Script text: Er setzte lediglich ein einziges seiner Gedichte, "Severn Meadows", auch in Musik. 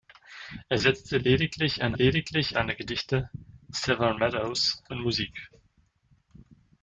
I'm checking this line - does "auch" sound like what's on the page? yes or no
no